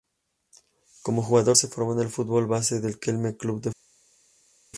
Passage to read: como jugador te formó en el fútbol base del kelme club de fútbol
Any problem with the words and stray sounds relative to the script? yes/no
yes